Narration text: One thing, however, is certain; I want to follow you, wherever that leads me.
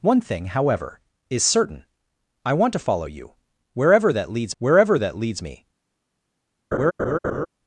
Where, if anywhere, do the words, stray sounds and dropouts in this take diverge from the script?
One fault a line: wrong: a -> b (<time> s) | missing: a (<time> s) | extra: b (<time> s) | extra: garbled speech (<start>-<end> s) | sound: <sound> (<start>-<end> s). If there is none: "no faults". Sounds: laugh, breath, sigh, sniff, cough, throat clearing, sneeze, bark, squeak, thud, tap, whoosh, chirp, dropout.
extra: wherever that leads (4.6 s)
sound: laugh (6.7-7.5 s)